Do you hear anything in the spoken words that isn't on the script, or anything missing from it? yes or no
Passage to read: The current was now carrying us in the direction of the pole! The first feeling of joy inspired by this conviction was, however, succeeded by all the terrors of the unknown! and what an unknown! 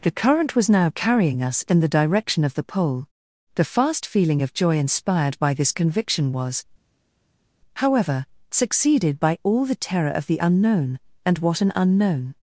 yes